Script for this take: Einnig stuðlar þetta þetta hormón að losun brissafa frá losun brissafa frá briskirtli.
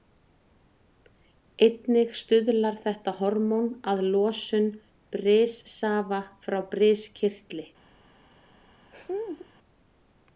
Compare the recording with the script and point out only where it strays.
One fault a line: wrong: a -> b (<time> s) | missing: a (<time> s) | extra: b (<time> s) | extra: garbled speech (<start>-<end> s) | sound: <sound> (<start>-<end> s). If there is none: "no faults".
missing: þetta (3.1 s)
missing: losun brissafa frá (6.6 s)
sound: laugh (8.9-9.5 s)